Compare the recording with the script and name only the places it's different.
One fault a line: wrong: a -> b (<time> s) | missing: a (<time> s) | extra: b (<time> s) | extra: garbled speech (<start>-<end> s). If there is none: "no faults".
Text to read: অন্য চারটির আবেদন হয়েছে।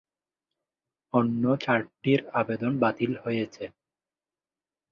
extra: বাতিল (2.8 s)